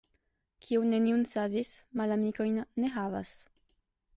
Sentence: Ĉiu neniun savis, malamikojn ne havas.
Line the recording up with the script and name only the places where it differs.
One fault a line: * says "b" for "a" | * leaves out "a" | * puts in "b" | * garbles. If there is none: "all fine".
* says "Kiu" for "Ĉiu"